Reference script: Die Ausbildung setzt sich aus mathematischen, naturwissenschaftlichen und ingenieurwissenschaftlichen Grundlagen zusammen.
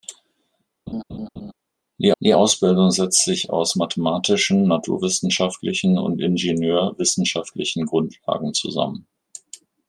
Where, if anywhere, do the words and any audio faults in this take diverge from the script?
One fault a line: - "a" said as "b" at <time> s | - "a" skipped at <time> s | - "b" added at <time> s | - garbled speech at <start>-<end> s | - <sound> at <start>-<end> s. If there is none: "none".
- laugh at 0.9-1.5 s
- "die" added at 2.2 s